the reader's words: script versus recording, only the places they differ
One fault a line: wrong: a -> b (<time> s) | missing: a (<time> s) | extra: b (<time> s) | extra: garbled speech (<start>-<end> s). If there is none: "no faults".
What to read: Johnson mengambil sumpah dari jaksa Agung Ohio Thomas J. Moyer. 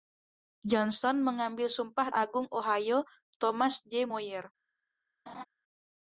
missing: dari jaksa (2.1 s)